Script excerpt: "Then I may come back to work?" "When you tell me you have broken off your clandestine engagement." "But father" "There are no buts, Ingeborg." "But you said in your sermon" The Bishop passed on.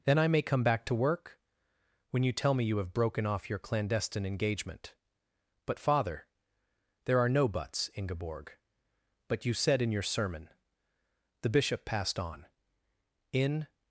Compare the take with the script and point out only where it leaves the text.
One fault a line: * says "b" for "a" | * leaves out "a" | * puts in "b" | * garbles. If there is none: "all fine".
* puts in "In"